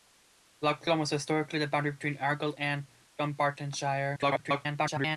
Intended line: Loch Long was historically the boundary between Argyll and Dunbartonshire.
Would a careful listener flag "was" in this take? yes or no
no